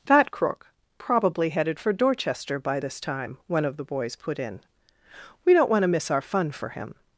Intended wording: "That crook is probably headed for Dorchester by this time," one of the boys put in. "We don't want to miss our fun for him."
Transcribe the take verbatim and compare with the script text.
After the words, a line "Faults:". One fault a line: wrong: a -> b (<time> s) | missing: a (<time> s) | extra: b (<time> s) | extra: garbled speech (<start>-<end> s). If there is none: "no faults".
"That crook probably headed for Dorchester by this time," one of the boys put in. "We don't want to miss our fun for him."
Faults:
missing: is (0.7 s)